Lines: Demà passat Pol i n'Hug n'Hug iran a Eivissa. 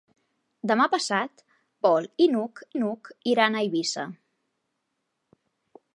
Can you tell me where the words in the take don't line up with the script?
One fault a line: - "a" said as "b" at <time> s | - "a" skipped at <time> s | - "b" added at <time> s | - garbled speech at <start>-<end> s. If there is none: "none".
none